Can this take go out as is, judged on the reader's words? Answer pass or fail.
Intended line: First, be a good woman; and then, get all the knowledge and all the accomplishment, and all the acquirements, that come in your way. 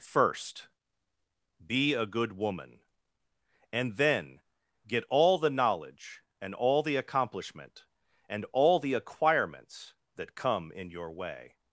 pass